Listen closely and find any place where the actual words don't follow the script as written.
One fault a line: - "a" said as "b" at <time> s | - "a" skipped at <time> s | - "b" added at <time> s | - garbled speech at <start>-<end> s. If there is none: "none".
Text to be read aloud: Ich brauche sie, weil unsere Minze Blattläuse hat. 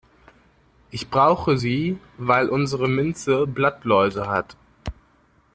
none